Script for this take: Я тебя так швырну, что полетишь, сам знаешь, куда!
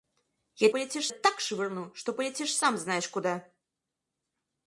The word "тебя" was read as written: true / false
false